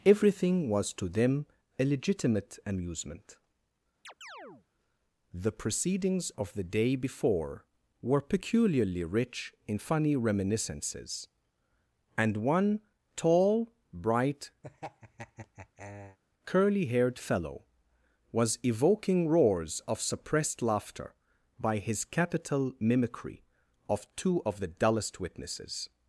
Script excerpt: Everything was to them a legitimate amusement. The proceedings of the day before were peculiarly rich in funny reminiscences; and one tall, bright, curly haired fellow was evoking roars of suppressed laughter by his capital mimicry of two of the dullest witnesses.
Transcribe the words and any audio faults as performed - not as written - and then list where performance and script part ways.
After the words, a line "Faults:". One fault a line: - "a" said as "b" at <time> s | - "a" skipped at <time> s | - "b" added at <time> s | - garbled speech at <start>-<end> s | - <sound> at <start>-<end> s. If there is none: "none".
Everything was to them a legitimate amusement. The proceedings of the day before were peculiarly rich in funny reminiscences; and one tall, bright, curly haired fellow was evoking roars of suppressed laughter by his capital mimicry of two of the dullest witnesses.
Faults:
- chirp at 4.0-4.7 s
- laugh at 14.6-16.2 s